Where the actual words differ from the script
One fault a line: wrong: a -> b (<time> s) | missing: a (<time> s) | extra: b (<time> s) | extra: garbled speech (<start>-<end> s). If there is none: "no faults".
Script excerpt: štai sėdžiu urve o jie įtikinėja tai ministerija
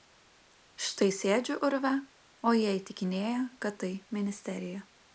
extra: kad (3.7 s)